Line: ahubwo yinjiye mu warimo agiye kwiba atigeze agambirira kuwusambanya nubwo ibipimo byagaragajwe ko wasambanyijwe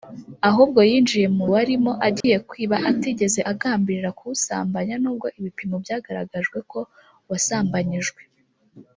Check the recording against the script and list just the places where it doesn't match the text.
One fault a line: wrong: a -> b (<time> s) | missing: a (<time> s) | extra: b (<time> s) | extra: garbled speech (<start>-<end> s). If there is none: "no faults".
no faults